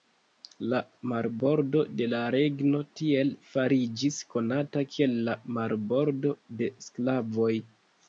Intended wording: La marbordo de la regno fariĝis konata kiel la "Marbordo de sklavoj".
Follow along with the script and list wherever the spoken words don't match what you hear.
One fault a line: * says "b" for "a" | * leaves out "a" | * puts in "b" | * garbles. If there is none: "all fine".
* puts in "tiel"